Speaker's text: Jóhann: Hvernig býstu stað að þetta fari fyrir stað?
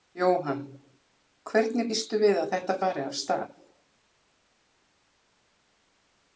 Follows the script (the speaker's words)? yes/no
no